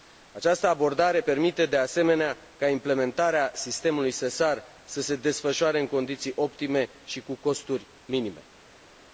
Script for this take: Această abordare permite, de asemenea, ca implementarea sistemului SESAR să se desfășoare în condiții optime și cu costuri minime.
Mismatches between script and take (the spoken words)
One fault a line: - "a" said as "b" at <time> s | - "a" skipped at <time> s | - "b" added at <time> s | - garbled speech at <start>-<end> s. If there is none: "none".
none